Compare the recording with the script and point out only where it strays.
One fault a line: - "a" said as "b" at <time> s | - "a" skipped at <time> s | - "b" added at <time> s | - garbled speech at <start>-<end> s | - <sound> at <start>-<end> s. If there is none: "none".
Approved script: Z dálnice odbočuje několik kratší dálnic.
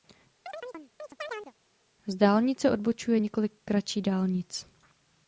- chirp at 0.5-1.5 s